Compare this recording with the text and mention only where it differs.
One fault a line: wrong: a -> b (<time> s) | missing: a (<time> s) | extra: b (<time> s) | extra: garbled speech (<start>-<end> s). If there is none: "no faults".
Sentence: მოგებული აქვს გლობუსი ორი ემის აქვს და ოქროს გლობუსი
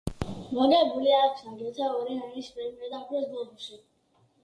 wrong: გლობუსი -> აგრეთვე (1.5 s)
wrong: აქვს -> პრემია (2.6 s)